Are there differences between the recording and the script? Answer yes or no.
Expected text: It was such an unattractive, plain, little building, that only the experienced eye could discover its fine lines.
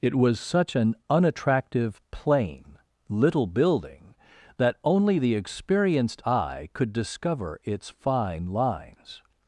no